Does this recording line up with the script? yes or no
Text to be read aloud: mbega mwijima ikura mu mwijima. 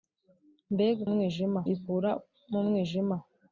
yes